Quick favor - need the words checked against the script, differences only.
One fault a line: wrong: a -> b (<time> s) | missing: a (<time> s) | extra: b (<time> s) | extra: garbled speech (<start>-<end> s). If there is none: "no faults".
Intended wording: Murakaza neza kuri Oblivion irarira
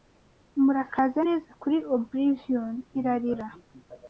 no faults